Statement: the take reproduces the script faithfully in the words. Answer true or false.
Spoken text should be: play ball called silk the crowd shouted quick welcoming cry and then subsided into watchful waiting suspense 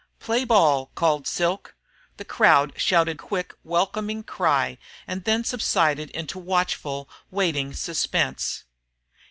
true